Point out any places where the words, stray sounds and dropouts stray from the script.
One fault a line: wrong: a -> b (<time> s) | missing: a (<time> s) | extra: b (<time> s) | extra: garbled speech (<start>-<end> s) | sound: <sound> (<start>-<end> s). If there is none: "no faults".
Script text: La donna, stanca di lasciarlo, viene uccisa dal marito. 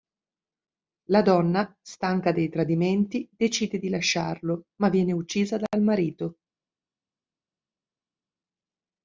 extra: dei tradimenti decide (2.3 s)
extra: ma (4.8 s)